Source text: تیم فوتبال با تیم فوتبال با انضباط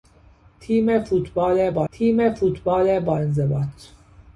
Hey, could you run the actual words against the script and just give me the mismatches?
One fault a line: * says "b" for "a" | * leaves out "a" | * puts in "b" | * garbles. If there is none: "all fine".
all fine